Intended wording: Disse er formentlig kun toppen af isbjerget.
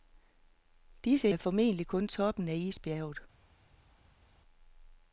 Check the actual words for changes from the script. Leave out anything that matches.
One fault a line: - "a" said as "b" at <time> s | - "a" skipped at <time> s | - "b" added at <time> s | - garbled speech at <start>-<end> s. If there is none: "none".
none